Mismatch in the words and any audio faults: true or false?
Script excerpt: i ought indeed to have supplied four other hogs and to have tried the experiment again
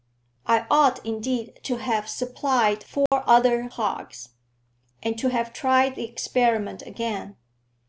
true